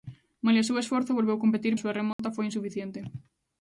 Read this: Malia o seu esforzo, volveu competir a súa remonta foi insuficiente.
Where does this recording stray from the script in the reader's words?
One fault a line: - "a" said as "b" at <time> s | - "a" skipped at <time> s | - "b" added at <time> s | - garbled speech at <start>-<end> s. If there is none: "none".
none